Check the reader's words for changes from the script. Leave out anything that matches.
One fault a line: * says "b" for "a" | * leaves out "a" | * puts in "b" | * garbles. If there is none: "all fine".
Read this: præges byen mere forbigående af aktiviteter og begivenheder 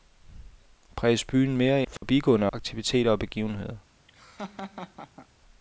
all fine